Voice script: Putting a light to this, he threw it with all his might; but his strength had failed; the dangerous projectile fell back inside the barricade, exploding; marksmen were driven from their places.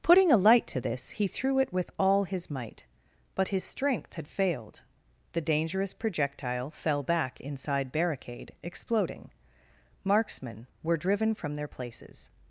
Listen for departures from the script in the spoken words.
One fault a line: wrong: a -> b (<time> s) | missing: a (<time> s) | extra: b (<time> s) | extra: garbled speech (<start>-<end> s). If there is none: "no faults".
missing: the (7.9 s)